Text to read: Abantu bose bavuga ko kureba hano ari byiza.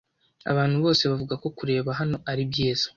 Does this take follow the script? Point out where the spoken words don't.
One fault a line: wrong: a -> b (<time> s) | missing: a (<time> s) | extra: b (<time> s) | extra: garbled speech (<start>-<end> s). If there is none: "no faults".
no faults